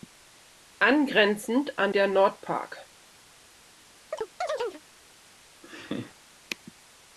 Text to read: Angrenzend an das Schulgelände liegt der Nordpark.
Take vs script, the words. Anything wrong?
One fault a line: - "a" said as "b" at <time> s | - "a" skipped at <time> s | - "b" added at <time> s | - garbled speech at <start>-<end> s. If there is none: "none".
- "das Schulgelände liegt" skipped at 1.9 s